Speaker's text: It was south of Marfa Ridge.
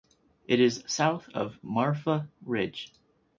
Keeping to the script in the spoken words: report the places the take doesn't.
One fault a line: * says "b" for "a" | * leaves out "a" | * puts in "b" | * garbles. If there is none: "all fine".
* says "is" for "was"